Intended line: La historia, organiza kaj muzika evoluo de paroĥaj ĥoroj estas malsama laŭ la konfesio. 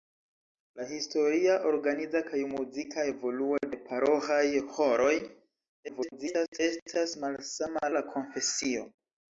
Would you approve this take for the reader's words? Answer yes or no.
no